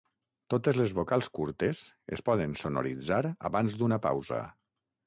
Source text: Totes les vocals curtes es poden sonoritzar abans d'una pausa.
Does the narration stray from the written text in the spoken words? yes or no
no